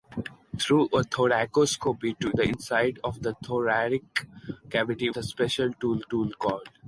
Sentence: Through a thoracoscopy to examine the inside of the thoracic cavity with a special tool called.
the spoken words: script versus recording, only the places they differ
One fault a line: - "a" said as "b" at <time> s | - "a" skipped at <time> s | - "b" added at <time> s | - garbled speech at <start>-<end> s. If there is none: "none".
- "examine" skipped at 2.3 s
- "with" skipped at 5.1 s
- "tool" added at 6.0 s